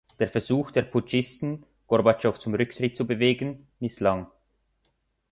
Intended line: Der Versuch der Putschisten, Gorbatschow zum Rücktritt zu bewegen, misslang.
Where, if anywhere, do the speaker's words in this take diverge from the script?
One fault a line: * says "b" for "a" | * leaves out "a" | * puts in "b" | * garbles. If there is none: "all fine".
all fine